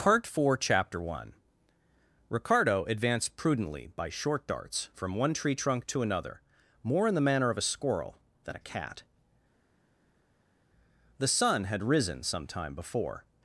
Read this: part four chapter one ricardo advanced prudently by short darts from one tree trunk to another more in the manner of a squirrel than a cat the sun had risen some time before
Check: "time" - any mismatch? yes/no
no